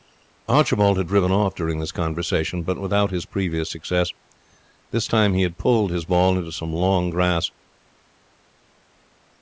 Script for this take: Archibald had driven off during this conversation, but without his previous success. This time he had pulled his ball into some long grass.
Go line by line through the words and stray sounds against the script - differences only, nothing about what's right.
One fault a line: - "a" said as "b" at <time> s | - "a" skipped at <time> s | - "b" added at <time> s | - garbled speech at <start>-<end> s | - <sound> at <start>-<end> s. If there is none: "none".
none